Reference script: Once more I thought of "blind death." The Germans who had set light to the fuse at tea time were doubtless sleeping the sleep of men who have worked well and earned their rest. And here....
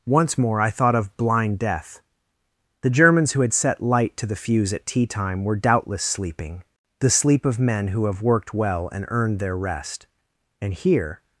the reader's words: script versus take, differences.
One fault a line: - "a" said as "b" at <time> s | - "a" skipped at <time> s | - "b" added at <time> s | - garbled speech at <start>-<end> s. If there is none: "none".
none